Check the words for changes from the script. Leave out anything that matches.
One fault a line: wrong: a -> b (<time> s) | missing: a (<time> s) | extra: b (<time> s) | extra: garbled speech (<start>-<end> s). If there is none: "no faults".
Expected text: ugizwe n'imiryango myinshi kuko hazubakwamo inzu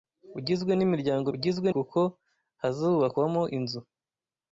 wrong: myinshi -> ugizwe (1.3 s)